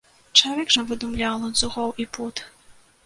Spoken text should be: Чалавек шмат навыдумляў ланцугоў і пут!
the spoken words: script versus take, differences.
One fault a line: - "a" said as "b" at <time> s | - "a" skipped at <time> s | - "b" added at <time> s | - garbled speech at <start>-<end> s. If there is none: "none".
- "шмат" skipped at 0.7 s